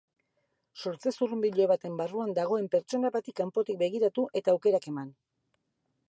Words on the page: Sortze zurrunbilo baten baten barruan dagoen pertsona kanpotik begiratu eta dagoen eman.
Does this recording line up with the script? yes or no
no